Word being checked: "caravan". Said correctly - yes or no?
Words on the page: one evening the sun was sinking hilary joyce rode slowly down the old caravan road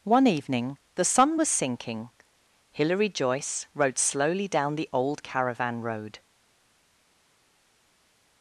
yes